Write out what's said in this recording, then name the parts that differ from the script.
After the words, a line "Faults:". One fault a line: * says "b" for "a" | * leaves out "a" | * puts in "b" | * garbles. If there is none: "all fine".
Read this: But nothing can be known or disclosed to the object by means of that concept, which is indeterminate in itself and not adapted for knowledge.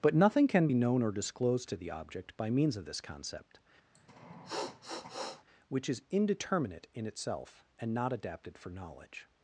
But nothing can be known or disclosed to the object by means of this concept, which is indeterminate in itself and not adapted for knowledge.
Faults:
* says "this" for "that"